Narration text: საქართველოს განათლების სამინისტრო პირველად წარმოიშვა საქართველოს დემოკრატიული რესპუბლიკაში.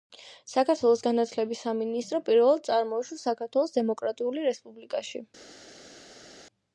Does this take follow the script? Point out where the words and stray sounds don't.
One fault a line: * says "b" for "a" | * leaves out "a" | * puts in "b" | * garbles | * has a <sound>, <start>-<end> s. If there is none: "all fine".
all fine